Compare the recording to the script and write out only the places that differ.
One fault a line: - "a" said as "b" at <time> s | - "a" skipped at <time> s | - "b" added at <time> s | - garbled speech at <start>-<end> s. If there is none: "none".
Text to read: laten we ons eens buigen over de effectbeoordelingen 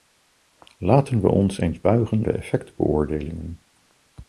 - "over" skipped at 2.3 s